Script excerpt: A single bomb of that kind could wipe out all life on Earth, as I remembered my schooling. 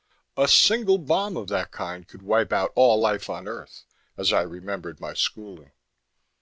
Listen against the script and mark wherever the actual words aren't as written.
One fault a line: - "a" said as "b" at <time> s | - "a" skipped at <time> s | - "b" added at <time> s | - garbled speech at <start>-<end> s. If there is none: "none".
none